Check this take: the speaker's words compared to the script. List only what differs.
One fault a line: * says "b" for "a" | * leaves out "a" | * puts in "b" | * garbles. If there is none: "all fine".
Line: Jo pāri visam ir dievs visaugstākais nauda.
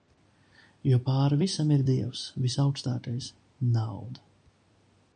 all fine